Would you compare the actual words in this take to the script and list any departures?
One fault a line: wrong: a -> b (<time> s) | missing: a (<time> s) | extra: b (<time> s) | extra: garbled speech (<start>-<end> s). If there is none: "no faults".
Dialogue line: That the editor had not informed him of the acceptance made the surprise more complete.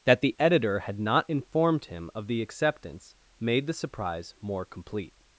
no faults